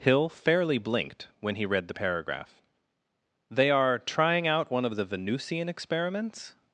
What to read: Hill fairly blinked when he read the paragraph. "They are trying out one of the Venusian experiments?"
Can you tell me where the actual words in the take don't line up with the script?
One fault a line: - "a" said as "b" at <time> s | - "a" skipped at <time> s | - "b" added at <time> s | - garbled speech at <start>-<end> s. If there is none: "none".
none